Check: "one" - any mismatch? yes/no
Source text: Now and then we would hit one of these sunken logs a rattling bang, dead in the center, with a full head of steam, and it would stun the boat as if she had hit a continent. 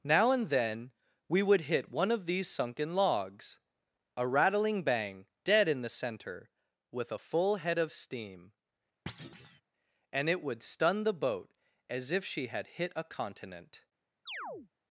no